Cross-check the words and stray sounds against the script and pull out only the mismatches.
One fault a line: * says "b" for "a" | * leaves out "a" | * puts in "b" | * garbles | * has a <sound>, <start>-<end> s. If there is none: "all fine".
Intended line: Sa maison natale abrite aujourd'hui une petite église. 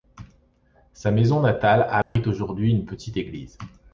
* has a dropout, 2.0-2.2 s